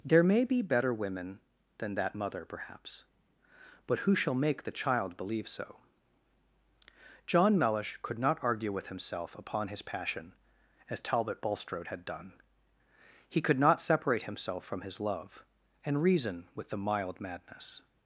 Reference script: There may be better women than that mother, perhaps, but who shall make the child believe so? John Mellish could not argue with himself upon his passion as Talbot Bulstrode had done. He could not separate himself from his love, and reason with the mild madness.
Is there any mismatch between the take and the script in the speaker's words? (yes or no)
no